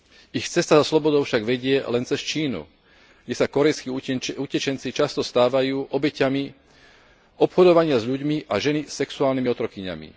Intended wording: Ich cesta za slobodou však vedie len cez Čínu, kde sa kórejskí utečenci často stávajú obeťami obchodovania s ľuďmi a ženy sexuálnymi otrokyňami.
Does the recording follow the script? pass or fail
pass